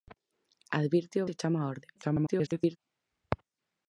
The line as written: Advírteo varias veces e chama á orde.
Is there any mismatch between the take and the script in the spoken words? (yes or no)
yes